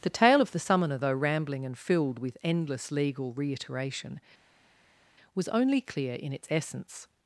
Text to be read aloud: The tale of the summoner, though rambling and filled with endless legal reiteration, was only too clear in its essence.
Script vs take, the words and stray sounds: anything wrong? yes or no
yes